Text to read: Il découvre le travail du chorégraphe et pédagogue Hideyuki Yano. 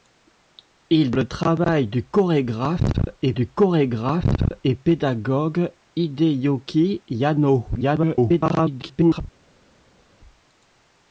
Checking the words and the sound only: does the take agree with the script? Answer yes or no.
no